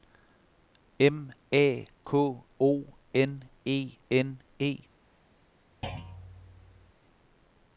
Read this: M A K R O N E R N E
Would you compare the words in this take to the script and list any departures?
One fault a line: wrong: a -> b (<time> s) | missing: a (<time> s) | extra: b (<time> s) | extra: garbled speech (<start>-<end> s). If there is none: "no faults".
missing: R (2.4 s)
missing: R (4.0 s)